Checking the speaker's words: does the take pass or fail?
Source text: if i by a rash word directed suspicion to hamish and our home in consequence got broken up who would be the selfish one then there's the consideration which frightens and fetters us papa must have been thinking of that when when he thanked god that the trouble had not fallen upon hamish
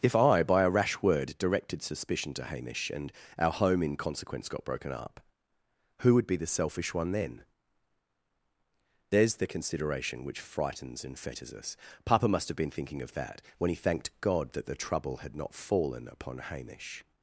fail